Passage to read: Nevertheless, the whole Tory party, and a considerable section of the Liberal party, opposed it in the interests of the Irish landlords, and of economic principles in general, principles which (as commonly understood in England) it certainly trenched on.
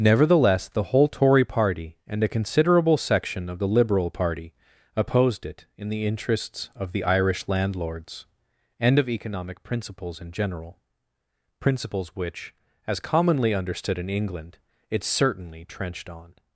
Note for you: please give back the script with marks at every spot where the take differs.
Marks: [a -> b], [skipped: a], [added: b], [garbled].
Nevertheless, the whole Tory party, and a considerable section of the Liberal party, opposed it in the interests of the Irish landlords, and of economic principles in general, principles which (as commonly understood in England) it certainly trenched on.